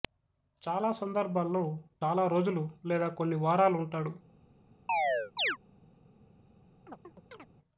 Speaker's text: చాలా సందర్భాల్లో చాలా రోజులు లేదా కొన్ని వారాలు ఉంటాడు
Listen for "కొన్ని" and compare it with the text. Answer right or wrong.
right